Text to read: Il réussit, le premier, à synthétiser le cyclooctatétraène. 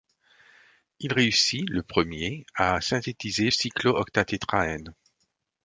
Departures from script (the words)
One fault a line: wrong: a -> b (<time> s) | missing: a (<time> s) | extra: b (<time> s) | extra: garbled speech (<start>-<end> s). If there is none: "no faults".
missing: le (3.5 s)